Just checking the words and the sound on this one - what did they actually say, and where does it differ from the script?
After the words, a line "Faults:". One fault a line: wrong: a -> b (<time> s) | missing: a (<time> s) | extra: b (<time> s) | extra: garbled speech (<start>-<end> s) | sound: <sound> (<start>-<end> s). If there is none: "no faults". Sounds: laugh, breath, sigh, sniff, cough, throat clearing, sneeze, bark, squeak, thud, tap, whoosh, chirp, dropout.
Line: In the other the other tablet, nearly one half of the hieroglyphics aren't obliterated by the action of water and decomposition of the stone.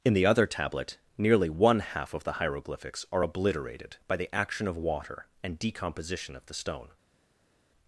In the other tablet, nearly one half of the hieroglyphics are obliterated by the action of water and decomposition of the stone.
Faults:
missing: the other (0.5 s)
wrong: aren't -> are (3.1 s)